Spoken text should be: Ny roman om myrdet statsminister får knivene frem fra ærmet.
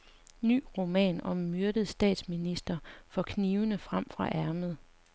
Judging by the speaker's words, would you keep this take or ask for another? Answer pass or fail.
pass